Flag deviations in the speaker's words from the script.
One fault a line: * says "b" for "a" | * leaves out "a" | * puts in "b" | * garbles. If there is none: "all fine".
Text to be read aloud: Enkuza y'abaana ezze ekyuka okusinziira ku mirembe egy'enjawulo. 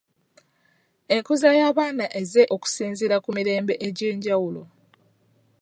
* leaves out "ekyuka"